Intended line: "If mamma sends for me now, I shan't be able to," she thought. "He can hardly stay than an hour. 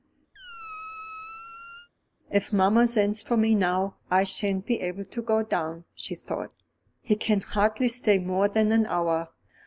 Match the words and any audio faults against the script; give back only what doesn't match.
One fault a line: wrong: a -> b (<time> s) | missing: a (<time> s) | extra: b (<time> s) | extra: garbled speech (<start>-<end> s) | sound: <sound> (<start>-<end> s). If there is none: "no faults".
sound: squeak (0.3-1.9 s)
extra: go down (5.2 s)
extra: more (8.2 s)